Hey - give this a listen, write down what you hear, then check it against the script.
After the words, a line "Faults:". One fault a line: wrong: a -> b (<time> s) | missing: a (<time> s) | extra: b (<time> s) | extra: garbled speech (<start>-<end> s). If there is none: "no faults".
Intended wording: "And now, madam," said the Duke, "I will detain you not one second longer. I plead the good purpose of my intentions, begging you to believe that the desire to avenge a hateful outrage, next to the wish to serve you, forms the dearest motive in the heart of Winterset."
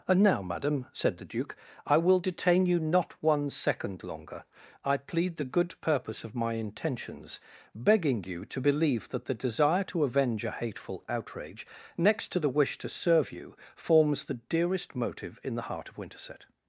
"And now, madam," said the Duke, "I will detain you not one second longer. I plead the good purpose of my intentions, begging you to believe that the desire to avenge a hateful outrage, next to the wish to serve you, forms the dearest motive in the heart of Winterset."
Faults:
no faults